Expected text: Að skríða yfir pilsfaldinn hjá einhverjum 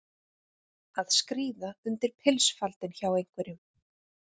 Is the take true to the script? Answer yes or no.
no